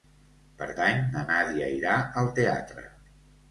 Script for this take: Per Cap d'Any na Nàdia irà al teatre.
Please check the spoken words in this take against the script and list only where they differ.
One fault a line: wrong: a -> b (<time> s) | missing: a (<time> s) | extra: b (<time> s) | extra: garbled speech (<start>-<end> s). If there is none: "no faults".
missing: Cap (0.7 s)